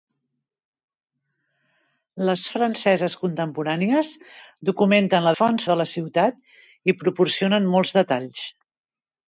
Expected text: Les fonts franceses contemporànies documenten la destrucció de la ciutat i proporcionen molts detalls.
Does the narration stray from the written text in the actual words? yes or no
yes